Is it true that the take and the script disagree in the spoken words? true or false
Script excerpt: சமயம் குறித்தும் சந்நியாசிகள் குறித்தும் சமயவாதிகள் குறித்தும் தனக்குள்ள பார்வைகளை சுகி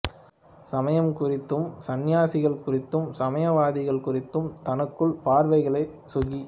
false